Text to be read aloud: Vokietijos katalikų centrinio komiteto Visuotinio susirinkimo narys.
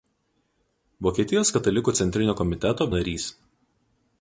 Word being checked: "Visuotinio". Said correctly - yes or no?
no